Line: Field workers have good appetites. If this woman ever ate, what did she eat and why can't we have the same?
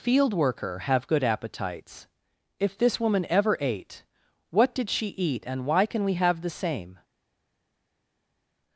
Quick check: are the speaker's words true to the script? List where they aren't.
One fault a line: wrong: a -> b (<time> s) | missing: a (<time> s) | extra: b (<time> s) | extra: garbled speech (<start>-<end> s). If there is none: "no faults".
wrong: workers -> worker (0.3 s)
wrong: can't -> can (5.9 s)